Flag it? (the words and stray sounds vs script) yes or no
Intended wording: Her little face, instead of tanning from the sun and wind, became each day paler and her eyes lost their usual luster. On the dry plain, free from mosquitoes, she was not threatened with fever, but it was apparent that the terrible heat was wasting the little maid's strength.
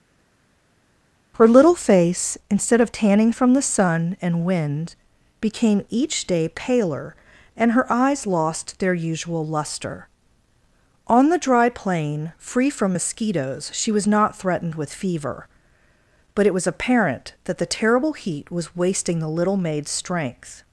no